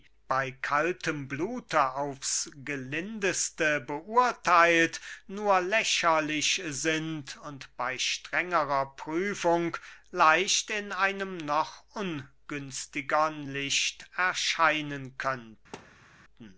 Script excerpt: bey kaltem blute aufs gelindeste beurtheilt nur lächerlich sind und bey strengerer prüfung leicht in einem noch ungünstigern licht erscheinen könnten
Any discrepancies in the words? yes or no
no